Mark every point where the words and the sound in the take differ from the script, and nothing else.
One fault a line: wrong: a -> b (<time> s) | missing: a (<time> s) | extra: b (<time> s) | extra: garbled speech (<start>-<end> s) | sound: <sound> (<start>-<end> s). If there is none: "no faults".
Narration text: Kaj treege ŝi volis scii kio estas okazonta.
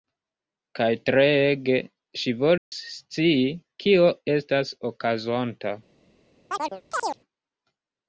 sound: dropout (2.6-2.7 s)
sound: chirp (6.5-7.2 s)